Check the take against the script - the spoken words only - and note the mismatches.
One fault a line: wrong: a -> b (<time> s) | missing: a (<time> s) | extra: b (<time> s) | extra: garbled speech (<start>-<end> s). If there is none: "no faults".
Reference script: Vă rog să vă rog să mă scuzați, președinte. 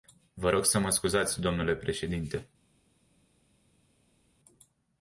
missing: vă rog să (0.8 s)
extra: dle (1.4 s)